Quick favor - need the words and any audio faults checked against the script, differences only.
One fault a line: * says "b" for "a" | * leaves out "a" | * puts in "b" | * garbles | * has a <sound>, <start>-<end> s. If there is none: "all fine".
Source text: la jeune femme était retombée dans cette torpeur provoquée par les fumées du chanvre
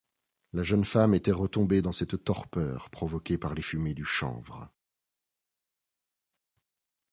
all fine